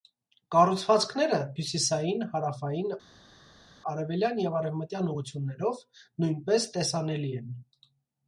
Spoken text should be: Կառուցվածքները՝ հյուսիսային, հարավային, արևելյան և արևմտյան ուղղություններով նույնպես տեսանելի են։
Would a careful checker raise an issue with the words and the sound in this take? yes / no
no